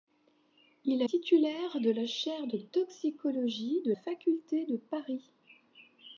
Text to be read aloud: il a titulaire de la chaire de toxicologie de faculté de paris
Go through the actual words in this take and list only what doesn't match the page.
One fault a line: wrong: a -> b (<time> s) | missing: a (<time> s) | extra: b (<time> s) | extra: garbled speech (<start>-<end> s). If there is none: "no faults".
no faults